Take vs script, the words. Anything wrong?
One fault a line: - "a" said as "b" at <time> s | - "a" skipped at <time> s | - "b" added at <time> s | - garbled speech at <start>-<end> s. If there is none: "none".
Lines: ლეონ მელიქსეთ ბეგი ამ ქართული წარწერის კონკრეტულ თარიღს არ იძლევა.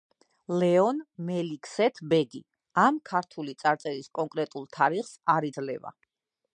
none